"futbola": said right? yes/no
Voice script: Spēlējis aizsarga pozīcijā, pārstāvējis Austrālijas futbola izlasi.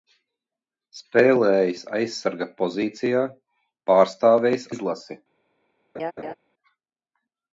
no